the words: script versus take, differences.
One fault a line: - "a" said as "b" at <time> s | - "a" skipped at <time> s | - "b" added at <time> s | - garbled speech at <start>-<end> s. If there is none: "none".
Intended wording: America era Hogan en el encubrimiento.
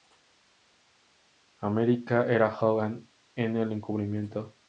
none